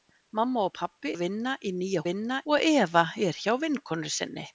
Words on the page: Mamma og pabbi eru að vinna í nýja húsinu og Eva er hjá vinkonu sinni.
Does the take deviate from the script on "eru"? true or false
true